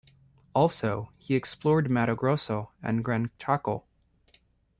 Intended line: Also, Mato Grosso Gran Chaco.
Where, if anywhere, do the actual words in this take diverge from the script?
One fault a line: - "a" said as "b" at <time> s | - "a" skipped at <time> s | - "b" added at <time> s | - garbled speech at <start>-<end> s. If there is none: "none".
- "he explored" added at 1.2 s
- "and" added at 2.8 s